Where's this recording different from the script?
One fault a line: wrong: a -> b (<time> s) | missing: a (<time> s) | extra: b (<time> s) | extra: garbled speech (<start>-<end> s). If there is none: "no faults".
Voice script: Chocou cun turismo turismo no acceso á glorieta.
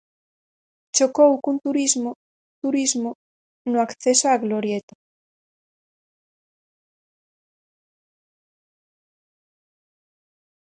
no faults